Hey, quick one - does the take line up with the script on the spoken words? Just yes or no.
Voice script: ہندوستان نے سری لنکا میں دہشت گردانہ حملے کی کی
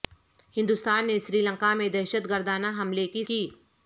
yes